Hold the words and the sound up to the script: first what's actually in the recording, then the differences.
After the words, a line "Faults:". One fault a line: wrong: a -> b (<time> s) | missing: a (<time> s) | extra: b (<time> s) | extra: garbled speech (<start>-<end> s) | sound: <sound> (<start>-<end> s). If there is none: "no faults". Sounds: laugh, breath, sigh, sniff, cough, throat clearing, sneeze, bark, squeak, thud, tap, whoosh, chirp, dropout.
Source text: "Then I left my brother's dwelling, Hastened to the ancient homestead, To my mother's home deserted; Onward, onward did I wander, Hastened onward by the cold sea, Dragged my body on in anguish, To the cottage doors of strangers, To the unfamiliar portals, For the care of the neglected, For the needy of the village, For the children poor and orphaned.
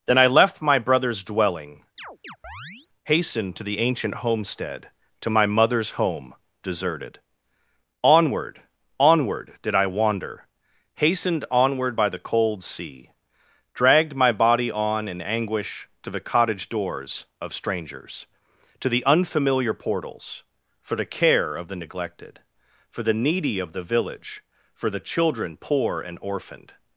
"Then I left my brother's dwelling, Hastened to the ancient homestead, To my mother's home deserted; Onward, onward did I wander, Hastened onward by the cold sea, Dragged my body on in anguish, To the cottage doors of strangers, To the unfamiliar portals, For the care of the neglected, For the needy of the village, For the children poor and orphaned.
Faults:
sound: chirp (2.0-2.9 s)